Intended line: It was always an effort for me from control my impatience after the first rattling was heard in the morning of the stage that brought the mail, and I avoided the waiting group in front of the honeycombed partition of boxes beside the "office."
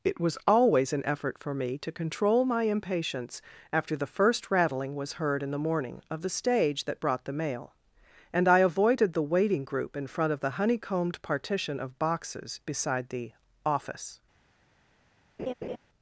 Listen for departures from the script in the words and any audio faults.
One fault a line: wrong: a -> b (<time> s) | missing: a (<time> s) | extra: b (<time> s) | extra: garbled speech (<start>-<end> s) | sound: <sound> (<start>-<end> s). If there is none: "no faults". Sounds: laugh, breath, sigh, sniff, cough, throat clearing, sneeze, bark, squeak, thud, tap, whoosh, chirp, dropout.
wrong: from -> to (1.8 s)
sound: laugh (15.4-15.8 s)